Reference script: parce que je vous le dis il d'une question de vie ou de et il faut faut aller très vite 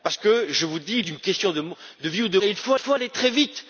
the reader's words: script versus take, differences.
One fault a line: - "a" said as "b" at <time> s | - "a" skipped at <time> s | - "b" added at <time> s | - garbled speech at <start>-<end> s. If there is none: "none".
none